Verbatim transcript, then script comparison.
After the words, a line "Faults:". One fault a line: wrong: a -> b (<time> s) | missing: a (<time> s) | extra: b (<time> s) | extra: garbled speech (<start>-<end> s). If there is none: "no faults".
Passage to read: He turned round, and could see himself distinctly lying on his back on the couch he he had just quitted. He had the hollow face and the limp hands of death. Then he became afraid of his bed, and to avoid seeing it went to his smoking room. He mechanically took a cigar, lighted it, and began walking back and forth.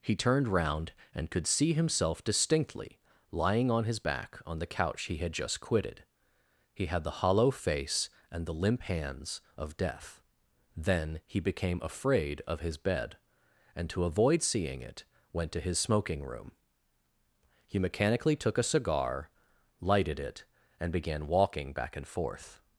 He turned round, and could see himself distinctly lying on his back on the couch he had just quitted. He had the hollow face and the limp hands of death. Then he became afraid of his bed, and to avoid seeing it went to his smoking room. He mechanically took a cigar, lighted it, and began walking back and forth.
Faults:
missing: he (5.2 s)